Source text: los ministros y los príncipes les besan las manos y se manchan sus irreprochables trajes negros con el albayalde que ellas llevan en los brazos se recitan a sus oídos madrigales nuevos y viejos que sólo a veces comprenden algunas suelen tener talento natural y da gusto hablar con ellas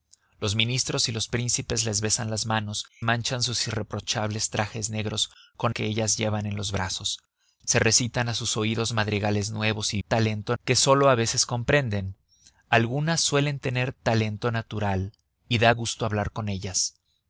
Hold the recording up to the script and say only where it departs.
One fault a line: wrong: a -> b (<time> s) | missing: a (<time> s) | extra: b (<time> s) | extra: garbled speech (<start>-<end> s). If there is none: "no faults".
missing: y se (2.9 s)
missing: el albayalde (5.7 s)
wrong: viejos -> talento (10.0 s)